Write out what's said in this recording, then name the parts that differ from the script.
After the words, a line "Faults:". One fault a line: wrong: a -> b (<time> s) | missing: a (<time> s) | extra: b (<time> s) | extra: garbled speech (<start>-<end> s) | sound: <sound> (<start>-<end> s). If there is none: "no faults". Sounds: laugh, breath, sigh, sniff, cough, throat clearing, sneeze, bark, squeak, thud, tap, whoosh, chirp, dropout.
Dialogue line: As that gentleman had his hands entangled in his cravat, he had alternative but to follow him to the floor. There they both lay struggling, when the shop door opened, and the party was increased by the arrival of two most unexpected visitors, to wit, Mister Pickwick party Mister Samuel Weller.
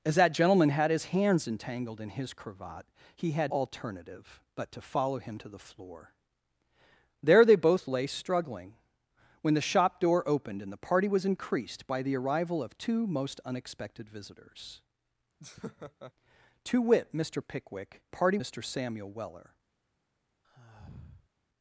As that gentleman had his hands entangled in his cravat, he had alternative but to follow him to the floor. There they both lay struggling, when the shop door opened, and the party was increased by the arrival of two most unexpected visitors, to wit, Mister Pickwick party Mister Samuel Weller.
Faults:
sound: laugh (15.4-16.1 s)
sound: sigh (20.4-21.3 s)